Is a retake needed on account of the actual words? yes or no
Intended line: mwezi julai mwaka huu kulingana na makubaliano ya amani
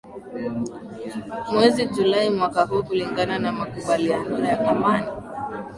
no